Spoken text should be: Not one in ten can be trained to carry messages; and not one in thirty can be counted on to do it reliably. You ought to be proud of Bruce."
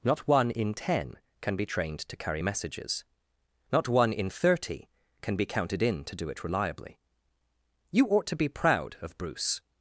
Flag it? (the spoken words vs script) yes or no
yes